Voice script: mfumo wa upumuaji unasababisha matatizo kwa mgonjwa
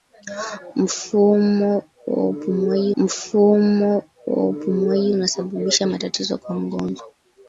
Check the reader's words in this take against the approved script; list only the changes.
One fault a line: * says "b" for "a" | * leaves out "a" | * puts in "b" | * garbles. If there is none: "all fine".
* puts in "mfumo wa upumuaji"